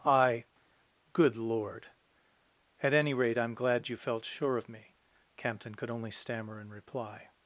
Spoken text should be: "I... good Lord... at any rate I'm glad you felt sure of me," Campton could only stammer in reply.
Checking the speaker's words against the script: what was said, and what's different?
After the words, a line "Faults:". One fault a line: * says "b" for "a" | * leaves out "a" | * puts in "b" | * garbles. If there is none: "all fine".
"I... good Lord... at any rate I'm glad you felt sure of me," Campton could only stammer in reply.
Faults:
all fine